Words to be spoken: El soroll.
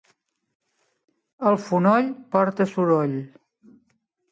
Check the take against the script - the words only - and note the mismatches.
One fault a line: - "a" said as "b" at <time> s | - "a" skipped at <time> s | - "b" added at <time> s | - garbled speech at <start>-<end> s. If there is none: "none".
- "fonoll porta" added at 1.7 s